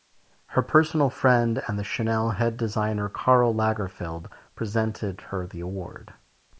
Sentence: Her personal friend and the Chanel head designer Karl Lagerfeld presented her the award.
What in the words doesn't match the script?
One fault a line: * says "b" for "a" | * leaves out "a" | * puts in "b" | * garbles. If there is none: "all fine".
all fine